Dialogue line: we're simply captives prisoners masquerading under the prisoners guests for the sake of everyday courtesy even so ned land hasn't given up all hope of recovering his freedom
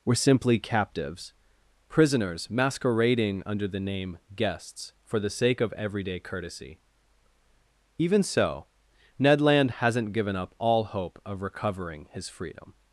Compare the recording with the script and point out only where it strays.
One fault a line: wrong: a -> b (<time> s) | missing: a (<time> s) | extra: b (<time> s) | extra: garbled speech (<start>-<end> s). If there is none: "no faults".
wrong: prisoners -> name (3.8 s)